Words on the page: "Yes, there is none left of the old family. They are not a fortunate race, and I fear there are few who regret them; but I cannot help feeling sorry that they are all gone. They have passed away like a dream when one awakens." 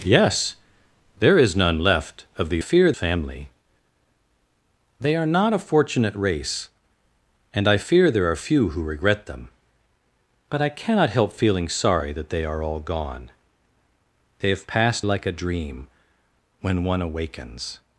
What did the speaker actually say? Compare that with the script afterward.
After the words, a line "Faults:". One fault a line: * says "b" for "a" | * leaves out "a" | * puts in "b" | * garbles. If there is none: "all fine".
"Yes, there is none left of the fear family. They are not a fortunate race, and I fear there are few who regret them; but I cannot help feeling sorry that they are all gone. They have passed like a dream when one awakens."
Faults:
* says "fear" for "old"
* leaves out "away"